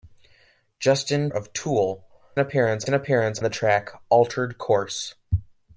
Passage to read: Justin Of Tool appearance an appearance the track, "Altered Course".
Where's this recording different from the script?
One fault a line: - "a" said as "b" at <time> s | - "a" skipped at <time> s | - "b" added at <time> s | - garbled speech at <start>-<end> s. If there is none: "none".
none